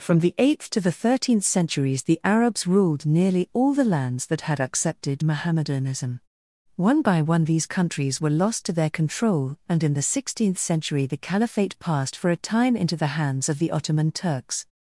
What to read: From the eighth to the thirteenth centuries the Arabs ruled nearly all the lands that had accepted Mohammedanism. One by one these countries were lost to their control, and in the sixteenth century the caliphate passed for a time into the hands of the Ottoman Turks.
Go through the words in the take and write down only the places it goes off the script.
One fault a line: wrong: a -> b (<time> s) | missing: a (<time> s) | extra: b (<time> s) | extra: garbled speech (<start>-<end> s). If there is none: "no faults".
no faults